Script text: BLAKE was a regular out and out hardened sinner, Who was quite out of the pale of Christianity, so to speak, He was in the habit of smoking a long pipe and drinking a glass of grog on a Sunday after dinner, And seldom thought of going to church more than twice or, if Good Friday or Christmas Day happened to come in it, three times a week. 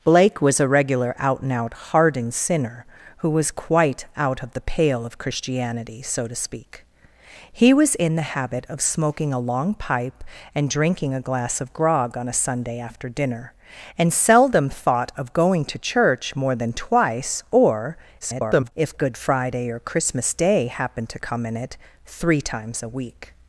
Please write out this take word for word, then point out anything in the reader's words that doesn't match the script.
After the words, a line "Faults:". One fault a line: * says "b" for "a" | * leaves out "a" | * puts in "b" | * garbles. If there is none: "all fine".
BLAKE was a regular out and out hardened sinner, Who was quite out of the pale of Christianity, so to speak, He was in the habit of smoking a long pipe and drinking a glass of grog on a Sunday after dinner, And seldom thought of going to church more than twice or, [garbled] if Good Friday or Christmas Day happened to come in it, three times a week.
Faults:
* garbles